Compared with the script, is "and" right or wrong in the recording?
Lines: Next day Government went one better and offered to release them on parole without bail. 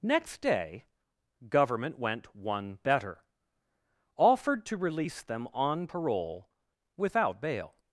wrong